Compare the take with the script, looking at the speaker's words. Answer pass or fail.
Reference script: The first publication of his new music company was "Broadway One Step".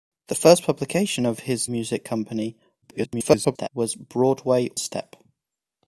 fail